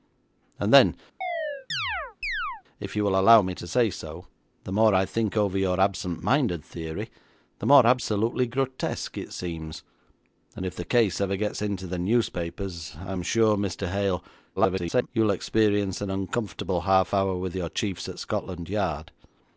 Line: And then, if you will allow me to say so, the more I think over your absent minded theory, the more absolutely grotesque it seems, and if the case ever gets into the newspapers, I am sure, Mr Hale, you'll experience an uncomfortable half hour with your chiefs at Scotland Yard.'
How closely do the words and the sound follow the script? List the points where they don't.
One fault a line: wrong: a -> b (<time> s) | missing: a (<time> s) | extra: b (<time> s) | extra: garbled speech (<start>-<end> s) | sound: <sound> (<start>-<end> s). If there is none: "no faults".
sound: chirp (1.2-2.6 s)
extra: garbled speech (14.6-15.1 s)